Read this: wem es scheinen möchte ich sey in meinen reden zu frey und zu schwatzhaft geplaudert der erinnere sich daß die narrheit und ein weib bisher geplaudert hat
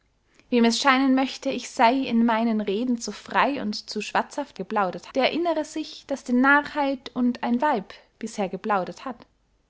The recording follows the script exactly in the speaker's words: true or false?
true